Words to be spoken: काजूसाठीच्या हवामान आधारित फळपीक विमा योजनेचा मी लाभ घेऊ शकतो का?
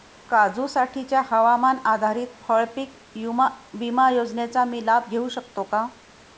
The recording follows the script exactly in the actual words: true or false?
true